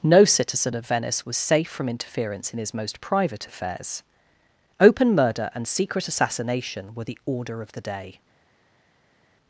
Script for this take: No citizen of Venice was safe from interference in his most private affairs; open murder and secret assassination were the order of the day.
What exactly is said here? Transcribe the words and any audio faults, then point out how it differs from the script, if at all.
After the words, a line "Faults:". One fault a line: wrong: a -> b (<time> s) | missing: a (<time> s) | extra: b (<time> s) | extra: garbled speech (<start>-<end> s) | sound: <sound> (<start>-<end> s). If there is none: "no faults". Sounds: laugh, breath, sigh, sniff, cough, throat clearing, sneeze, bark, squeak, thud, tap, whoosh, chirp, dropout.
No citizen of Venice was safe from interference in his most private affairs; open murder and secret assassination were the order of the day.
Faults:
no faults